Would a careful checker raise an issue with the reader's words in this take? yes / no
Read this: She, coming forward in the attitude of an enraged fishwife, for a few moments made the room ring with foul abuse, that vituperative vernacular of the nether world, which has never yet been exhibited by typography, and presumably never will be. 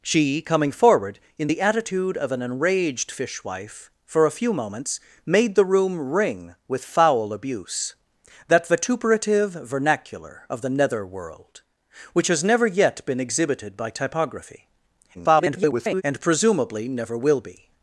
yes